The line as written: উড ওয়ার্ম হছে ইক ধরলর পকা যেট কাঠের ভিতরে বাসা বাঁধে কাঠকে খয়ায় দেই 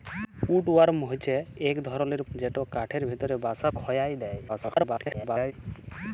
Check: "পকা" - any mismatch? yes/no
yes